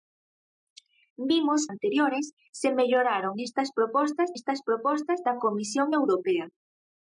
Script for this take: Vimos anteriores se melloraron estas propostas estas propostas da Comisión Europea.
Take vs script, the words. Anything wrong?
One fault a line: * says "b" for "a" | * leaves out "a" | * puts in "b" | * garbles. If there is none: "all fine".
all fine